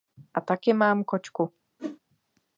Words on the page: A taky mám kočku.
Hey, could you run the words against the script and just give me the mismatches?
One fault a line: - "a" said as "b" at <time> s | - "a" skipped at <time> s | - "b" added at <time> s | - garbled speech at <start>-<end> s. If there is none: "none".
none